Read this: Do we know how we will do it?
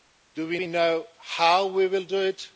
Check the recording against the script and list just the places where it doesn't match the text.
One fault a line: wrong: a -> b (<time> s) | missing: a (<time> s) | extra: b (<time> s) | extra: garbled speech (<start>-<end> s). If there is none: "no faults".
extra: we (0.5 s)